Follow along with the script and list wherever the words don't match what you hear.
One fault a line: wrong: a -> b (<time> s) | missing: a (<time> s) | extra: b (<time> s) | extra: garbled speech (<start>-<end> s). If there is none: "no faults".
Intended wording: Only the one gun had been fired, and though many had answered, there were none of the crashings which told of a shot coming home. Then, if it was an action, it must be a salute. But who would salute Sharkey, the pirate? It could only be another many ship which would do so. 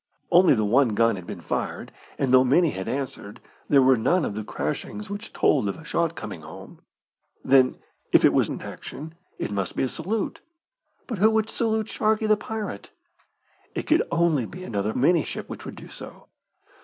no faults